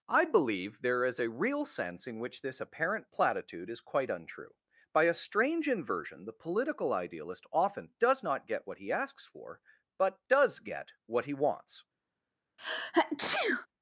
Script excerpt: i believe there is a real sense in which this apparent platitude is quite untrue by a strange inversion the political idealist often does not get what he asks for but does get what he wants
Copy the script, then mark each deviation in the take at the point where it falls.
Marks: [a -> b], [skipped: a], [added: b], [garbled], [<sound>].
i believe there is a real sense in which this apparent platitude is quite untrue by a strange inversion the political idealist often does not get what he asks for but does get what he wants [sneeze]